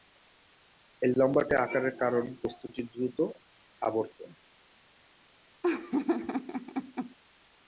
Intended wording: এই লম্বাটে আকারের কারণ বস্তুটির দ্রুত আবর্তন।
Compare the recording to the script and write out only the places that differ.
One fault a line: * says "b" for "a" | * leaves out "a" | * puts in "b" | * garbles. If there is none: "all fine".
all fine